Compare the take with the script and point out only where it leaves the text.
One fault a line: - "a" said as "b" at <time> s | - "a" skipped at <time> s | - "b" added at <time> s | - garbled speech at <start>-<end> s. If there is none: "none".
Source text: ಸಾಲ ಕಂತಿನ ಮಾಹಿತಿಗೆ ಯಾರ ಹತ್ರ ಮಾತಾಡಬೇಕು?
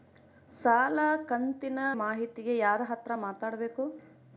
none